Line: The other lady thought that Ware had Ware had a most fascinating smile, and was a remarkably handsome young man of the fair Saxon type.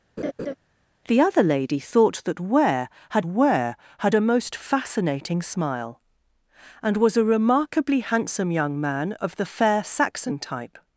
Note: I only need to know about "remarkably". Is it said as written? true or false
true